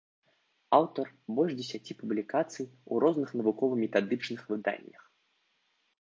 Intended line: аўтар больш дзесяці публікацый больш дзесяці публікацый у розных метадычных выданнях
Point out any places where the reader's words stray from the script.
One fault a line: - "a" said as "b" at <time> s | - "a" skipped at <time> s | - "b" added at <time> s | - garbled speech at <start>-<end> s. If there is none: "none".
- "больш дзесяці публікацый" skipped at 2.6 s
- "навукова" added at 3.4 s